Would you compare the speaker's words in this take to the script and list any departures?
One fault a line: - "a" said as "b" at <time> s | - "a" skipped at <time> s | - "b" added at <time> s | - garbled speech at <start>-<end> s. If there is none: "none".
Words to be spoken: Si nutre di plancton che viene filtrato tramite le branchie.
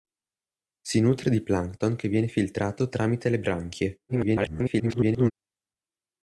- garbled speech at 4.1-5.3 s